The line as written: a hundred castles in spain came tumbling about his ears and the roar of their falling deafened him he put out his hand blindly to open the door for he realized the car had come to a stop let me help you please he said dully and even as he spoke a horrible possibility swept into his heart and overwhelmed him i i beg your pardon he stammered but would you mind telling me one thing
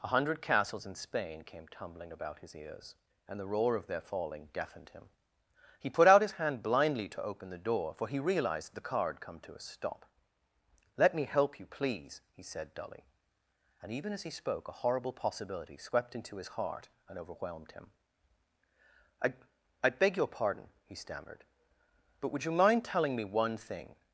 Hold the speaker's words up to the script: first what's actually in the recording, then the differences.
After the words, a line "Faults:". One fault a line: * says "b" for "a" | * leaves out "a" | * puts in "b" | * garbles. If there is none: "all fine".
a hundred castles in spain came tumbling about his ears and the roar of their falling deafened him he put out his hand blindly to open the door for he realized the car had come to a stop let me help you please he said dully and even as he spoke a horrible possibility swept into his heart and overwhelmed him i i beg your pardon he stammered but would you mind telling me one thing
Faults:
all fine